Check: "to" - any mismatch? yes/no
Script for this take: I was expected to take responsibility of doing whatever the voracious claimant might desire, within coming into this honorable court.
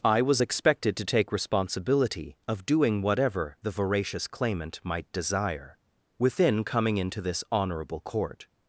no